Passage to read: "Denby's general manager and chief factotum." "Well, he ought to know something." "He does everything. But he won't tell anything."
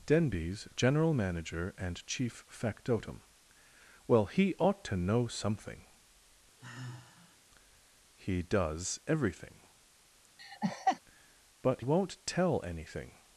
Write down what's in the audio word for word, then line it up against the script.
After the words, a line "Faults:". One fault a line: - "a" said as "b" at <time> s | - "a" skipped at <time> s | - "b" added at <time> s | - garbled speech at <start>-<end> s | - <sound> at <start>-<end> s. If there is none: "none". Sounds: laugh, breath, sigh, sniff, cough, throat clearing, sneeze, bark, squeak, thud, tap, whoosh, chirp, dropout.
"Denby's general manager and chief factotum." "Well, he ought to know something." "He does everything. But won't tell anything."
Faults:
- sigh at 6.6-7.4 s
- laugh at 10.4-11.0 s
- "he" skipped at 11.8 s